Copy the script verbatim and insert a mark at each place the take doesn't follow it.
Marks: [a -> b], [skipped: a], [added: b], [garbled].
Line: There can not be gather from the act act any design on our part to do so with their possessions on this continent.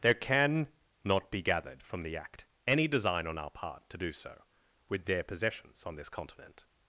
There can not be [gather -> gathered] from the act [skipped: act] any design on our part to do so with their possessions on this continent.